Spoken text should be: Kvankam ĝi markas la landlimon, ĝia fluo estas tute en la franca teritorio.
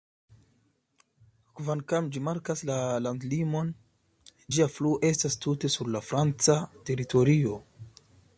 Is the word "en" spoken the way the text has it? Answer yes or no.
no